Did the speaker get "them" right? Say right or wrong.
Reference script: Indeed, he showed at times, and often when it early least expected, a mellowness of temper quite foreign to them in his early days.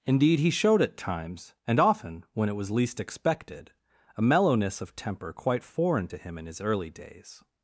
wrong